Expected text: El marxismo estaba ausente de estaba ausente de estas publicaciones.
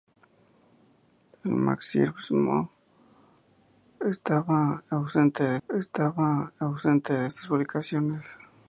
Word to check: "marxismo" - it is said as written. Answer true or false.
true